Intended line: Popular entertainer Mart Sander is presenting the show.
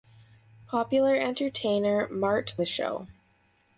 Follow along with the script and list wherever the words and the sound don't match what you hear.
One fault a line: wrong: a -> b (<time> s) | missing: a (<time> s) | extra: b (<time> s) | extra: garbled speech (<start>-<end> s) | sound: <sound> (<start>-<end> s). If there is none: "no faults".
missing: Sander is presenting (2.5 s)